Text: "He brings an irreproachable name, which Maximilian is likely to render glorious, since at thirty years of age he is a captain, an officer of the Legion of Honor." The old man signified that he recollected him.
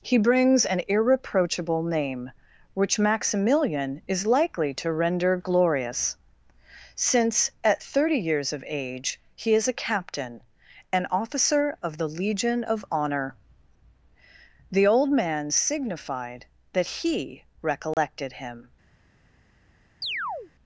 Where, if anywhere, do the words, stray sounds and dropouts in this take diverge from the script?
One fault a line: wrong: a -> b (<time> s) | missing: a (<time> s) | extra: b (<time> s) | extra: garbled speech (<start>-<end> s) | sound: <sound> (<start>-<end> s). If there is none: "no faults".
sound: dropout (17.9-18.0 s)
sound: chirp (20.0-20.5 s)